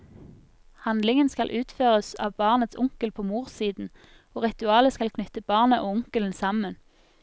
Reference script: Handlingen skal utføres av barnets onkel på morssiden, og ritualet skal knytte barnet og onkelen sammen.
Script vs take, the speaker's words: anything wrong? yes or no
no